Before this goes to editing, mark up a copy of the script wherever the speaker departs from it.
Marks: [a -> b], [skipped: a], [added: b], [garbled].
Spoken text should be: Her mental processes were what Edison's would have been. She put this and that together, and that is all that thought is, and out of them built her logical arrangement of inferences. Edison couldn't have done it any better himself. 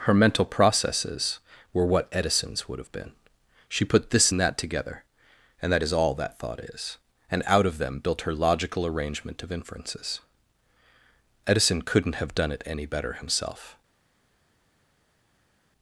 Her mental processes were what Edison's would have been. She put this and that together, and that is all that thought is, and out of them built her logical arrangement of inferences. Edison couldn't have done it any better himself.